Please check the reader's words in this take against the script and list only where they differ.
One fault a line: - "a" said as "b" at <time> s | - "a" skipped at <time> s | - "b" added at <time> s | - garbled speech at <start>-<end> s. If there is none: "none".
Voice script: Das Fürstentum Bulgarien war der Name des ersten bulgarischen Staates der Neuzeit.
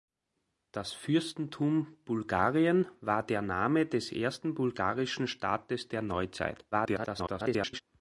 - garbled speech at 6.7-7.8 s